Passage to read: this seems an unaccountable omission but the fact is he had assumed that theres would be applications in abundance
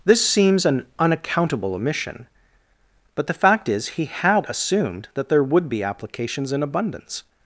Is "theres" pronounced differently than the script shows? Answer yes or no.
yes